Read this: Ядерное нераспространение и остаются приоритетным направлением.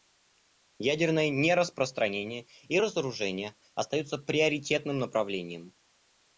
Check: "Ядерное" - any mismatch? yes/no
no